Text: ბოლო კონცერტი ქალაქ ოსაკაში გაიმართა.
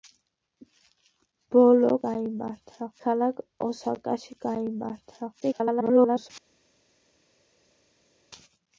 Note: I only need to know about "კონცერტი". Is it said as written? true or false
false